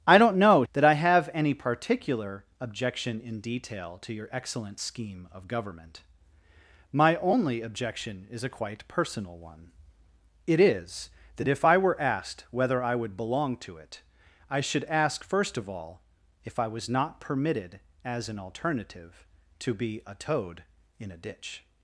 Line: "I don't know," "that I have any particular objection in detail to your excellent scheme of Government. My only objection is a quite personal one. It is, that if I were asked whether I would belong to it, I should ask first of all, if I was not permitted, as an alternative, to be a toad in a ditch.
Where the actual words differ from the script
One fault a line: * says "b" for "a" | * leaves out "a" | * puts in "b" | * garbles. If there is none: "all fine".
all fine